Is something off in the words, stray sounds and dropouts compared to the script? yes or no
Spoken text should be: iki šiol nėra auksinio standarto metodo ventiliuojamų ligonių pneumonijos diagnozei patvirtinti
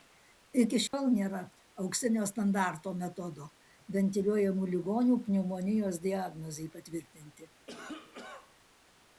yes